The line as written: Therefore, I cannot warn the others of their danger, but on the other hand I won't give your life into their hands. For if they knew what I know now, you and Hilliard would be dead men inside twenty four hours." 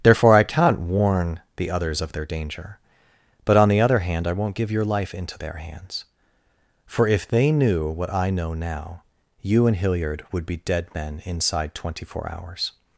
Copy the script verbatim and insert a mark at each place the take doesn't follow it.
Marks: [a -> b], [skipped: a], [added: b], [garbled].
Therefore, I cannot warn the others of their danger, but on the other hand I won't give your life into their hands. For if they knew what I know now, you and Hilliard would be dead men inside twenty four hours."